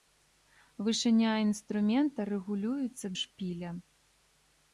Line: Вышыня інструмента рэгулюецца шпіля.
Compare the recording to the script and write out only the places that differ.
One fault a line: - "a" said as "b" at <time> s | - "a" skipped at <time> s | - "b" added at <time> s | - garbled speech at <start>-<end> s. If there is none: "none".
none